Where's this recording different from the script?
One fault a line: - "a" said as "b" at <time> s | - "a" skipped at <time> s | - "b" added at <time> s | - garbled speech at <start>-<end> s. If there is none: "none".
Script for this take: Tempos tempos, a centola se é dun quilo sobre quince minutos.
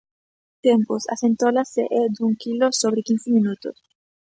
- "tempos" skipped at 1.0 s